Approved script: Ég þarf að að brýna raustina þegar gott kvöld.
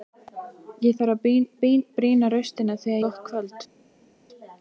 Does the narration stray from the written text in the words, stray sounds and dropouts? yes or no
no